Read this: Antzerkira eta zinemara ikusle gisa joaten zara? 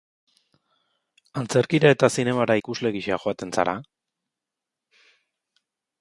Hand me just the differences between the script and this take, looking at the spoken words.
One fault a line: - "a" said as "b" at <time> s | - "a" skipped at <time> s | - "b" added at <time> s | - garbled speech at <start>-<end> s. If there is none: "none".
none